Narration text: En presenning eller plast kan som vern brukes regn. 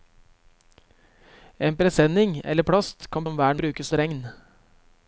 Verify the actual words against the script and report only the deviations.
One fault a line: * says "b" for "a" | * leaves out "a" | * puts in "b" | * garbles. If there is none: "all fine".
all fine